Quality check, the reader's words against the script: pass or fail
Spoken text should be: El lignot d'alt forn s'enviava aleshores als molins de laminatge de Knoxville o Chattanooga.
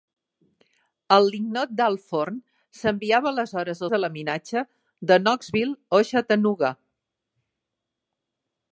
fail